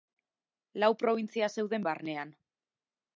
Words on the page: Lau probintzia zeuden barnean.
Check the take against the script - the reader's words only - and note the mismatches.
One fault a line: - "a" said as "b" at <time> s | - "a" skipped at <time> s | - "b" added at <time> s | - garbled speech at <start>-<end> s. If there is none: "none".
none